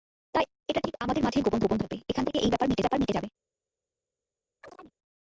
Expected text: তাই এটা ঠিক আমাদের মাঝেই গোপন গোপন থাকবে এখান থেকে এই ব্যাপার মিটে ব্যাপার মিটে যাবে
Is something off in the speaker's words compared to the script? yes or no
no